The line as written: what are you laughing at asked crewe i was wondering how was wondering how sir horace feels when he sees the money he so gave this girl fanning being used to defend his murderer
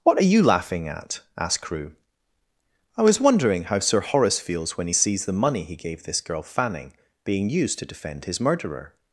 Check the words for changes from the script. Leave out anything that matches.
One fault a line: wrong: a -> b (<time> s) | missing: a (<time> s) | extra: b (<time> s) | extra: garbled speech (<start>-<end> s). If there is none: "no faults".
missing: was wondering how (3.8 s)
missing: so (5.7 s)